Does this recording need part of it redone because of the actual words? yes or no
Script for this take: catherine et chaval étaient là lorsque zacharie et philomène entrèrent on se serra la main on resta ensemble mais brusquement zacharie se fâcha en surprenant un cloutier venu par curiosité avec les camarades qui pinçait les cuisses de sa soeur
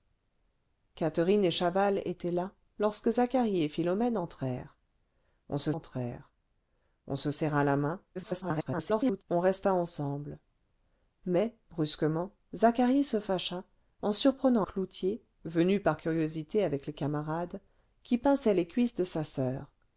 yes